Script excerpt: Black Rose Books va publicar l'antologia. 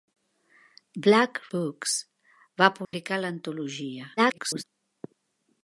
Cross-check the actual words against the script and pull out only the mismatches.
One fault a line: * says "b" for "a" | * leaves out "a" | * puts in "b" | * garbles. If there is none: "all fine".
* leaves out "Rose"
* garbles